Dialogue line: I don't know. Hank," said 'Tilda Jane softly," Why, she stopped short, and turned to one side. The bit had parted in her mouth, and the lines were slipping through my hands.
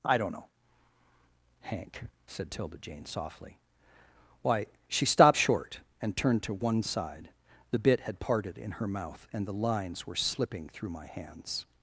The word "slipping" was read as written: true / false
true